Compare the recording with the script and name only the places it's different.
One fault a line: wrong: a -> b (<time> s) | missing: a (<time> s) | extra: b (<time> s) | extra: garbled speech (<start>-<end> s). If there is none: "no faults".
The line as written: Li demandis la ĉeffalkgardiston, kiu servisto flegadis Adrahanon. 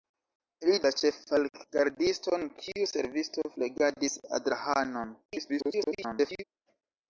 missing: demandis (0.8 s)
extra: garbled speech (5.3-6.4 s)